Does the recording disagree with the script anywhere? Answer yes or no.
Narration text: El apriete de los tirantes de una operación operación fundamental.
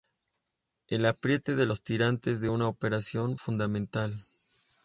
yes